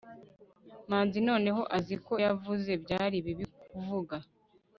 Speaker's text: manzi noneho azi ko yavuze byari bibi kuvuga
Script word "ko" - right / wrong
right